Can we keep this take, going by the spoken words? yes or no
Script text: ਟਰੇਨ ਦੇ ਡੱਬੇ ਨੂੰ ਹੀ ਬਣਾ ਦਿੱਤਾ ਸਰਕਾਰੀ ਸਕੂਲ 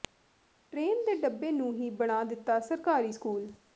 yes